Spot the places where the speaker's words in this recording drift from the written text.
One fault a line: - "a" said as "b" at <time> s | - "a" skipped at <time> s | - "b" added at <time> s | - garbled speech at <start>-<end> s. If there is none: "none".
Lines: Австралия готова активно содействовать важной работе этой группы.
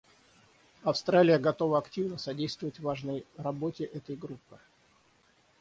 none